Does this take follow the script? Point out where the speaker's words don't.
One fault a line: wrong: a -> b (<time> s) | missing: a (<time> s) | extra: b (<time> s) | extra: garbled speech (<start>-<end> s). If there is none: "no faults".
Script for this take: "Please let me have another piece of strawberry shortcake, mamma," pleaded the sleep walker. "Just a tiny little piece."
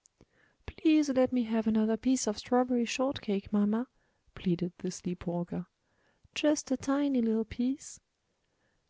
no faults